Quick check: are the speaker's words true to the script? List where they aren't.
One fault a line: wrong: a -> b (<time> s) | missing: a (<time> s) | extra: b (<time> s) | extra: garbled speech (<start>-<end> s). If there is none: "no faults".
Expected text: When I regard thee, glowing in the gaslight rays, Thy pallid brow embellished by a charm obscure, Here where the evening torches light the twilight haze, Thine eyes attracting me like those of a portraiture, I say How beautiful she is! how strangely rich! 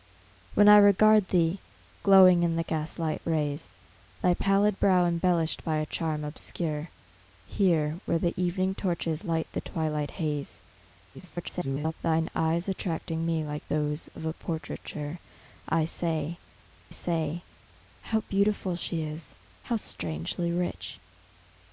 extra: garbled speech (11.1-11.9 s)
extra: say (16.9 s)